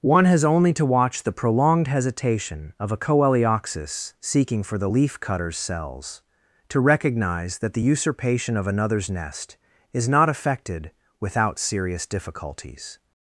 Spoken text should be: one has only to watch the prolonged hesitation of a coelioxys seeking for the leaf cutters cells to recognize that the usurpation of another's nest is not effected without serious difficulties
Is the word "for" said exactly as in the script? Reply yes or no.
yes